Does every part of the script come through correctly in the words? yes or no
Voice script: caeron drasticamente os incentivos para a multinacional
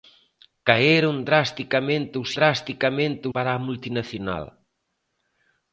no